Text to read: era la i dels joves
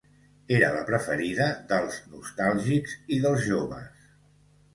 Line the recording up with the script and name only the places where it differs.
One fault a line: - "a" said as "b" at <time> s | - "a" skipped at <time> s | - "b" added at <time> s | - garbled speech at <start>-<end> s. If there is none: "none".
- "preferida dels nostàlgics" added at 0.9 s